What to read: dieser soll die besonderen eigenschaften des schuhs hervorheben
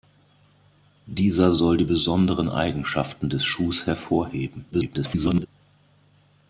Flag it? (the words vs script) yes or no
yes